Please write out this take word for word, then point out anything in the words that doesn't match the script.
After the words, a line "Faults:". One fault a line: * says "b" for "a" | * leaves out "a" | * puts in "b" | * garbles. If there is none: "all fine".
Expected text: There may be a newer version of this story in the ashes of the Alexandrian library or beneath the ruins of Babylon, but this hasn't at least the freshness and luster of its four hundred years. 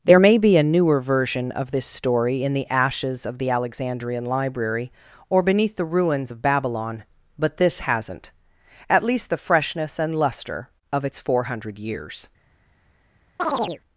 There may be a newer version of this story in the ashes of the Alexandrian library or beneath the ruins of Babylon, but this hasn't at least the freshness and luster of its four hundred years.
Faults:
all fine